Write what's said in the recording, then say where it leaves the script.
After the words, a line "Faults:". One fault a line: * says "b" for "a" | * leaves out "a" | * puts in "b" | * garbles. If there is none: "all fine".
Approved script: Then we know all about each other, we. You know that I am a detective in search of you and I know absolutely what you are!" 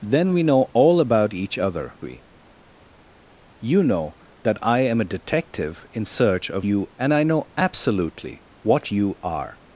Then we know all about each other, we. You know that I am a detective in search of you and I know absolutely what you are!"
Faults:
all fine